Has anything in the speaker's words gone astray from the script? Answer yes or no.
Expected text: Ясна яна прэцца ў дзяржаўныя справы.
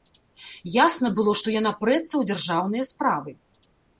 yes